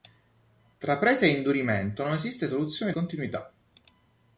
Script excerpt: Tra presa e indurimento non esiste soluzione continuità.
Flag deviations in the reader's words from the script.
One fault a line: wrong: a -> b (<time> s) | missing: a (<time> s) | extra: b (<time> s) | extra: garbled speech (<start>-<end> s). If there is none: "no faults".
no faults